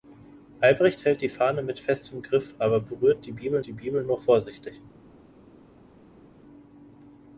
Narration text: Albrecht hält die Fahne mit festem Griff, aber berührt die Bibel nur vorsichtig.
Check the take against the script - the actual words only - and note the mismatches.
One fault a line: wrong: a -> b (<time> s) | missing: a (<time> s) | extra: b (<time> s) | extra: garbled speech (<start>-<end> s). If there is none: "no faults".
extra: die Bibel (3.6 s)